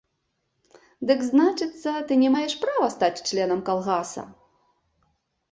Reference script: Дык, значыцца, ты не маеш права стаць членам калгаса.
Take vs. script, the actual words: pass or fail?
pass